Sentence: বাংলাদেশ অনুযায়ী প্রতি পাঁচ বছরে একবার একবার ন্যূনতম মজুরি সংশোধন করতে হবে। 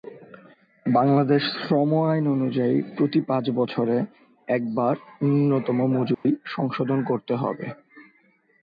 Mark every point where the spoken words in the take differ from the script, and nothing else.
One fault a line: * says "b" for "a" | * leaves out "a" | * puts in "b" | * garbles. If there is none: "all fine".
* puts in "শ্রম আইন"
* leaves out "একবার"